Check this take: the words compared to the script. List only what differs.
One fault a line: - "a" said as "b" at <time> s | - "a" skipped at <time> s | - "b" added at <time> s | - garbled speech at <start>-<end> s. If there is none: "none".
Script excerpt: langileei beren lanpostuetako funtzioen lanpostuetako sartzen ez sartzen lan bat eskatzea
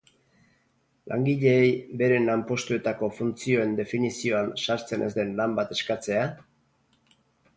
- "lanpostuetako" said as "definizioan" at 3.8 s
- "sartzen" said as "den" at 5.2 s